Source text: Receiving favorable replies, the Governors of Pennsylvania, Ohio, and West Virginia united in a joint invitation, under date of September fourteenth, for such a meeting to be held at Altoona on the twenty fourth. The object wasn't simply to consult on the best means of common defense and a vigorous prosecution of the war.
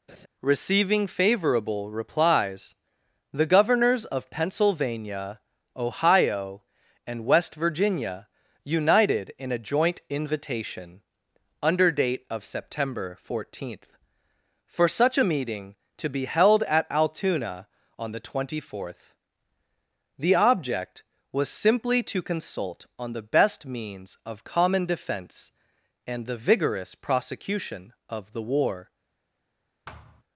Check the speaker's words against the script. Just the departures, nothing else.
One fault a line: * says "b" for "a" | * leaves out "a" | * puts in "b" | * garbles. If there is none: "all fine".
* says "was" for "wasn't"
* says "the" for "a"